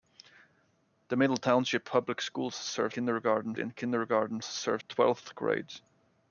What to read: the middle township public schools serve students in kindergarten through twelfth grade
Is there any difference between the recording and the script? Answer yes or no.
yes